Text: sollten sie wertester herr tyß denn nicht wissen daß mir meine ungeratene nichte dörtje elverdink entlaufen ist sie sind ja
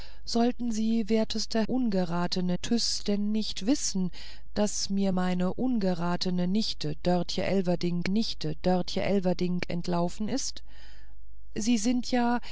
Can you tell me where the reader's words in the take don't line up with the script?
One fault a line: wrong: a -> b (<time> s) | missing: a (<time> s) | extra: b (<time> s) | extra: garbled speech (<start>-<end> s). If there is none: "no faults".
wrong: herr -> ungeratene (1.6 s)
extra: nichte dörtje elverdink (8.1 s)